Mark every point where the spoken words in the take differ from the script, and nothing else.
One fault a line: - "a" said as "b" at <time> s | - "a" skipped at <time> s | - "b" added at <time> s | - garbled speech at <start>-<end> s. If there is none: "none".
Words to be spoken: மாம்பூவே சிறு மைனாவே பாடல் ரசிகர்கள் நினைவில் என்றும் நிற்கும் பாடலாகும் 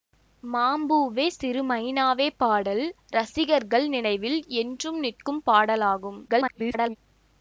- garbled speech at 6.3-7.0 s